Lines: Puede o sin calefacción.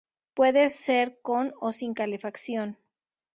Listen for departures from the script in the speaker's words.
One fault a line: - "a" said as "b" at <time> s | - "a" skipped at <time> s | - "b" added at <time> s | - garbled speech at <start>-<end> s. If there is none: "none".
- "ser con" added at 0.7 s